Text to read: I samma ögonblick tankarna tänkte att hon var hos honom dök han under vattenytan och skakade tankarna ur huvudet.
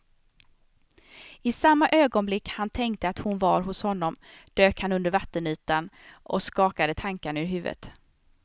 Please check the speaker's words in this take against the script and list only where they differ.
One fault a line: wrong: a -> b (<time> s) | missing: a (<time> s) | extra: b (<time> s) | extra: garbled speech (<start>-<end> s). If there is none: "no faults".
wrong: tankarna -> han (2.5 s)